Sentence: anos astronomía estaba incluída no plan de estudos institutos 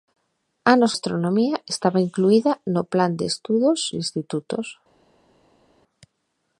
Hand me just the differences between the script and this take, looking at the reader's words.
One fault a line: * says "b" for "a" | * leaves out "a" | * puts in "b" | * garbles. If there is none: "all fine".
all fine